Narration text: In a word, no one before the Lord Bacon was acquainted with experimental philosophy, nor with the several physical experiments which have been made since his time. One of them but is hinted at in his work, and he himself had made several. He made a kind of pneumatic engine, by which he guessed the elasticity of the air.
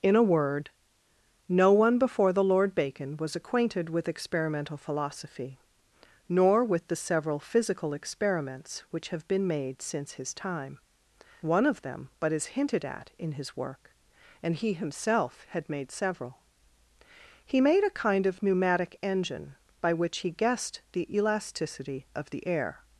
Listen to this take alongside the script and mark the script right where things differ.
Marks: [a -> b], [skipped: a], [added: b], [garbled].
In a word, no one before the Lord Bacon was acquainted with experimental philosophy, nor with the several physical experiments which have been made since his time. One of them but is hinted at in his work, and he himself had made several. He made a kind of pneumatic engine, by which he guessed the elasticity of the air.